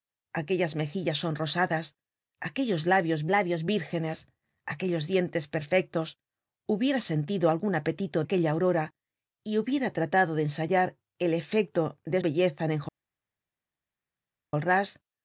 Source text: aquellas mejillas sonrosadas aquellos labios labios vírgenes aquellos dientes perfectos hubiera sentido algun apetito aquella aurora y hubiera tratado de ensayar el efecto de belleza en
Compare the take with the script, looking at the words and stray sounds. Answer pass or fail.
pass